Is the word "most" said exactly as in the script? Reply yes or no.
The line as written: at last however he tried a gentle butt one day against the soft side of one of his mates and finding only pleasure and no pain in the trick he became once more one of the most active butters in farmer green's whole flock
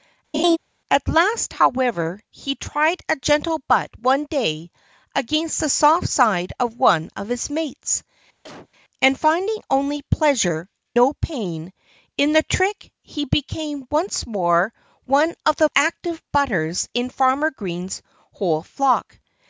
no